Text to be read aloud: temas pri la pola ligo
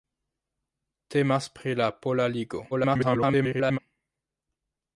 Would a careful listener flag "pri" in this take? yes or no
no